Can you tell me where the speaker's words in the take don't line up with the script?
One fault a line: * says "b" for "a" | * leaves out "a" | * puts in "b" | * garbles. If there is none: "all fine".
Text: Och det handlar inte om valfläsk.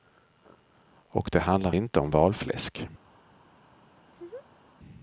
all fine